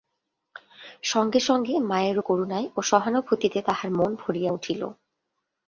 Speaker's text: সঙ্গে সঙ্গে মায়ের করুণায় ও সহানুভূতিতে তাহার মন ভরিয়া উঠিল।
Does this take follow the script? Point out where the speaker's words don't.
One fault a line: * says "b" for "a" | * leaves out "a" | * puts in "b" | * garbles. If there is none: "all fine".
all fine